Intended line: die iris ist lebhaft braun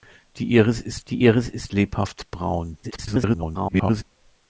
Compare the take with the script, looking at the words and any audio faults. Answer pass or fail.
fail